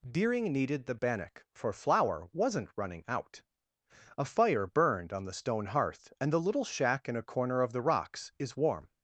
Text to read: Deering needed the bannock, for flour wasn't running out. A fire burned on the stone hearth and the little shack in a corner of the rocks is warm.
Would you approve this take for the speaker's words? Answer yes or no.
yes